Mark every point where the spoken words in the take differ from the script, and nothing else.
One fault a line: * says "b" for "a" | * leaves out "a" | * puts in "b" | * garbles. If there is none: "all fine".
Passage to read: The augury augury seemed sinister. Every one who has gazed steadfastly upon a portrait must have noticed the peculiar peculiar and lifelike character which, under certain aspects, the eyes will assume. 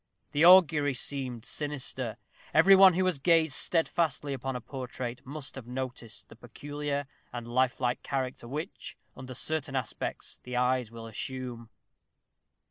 * leaves out "augury"
* leaves out "peculiar"